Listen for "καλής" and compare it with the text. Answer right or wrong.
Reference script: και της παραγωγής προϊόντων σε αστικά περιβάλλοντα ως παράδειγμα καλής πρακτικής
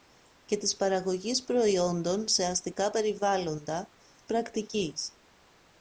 wrong